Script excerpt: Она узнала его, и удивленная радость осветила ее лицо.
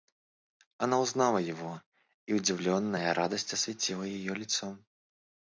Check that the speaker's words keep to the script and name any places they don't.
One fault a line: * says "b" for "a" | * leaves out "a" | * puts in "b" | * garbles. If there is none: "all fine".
all fine